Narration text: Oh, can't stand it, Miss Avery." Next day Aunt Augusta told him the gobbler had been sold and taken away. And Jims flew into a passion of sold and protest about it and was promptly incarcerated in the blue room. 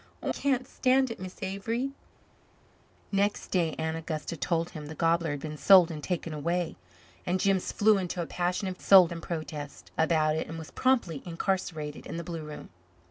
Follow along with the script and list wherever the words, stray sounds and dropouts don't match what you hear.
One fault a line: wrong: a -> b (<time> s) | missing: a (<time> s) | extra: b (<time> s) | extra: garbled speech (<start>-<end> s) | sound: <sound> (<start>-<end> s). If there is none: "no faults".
no faults